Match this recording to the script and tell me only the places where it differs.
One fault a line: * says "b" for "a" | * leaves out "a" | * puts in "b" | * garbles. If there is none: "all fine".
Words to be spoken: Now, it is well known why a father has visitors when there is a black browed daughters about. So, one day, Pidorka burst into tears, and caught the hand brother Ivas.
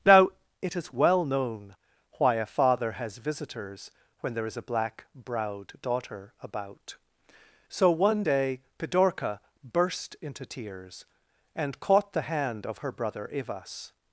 * says "daughter" for "daughters"
* puts in "of her"